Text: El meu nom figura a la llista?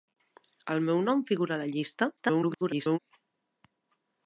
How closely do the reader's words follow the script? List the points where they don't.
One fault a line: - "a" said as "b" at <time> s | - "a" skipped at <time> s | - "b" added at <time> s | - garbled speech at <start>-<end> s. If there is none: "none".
- garbled speech at 2.2-3.0 s